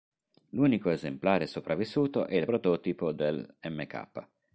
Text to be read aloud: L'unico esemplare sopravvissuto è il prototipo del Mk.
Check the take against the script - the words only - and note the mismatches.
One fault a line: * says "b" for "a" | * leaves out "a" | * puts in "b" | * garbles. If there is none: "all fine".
all fine